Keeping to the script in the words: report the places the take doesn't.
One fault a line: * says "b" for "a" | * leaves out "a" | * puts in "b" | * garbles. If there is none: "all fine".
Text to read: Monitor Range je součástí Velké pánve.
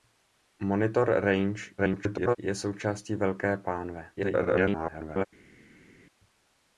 * garbles
* garbles